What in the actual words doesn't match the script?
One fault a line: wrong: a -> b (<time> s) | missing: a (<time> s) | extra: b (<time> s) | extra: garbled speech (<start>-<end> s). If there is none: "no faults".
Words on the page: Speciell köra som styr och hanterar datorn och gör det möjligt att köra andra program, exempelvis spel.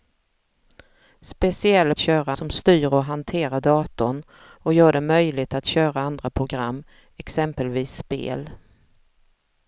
no faults